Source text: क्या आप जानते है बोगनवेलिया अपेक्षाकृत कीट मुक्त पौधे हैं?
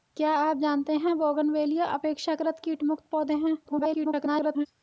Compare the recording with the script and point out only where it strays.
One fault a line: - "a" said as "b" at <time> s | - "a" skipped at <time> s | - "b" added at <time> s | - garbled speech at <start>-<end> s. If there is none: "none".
- garbled speech at 3.6-4.7 s